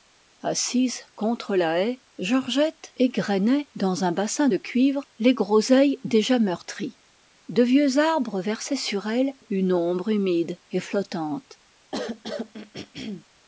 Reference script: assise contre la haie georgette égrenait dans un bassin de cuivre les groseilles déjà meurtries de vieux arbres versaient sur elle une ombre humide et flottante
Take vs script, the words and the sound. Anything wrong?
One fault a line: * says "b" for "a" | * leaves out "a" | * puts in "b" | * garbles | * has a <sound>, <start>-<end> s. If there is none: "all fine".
* has a throat clearing, 11.9-13.3 s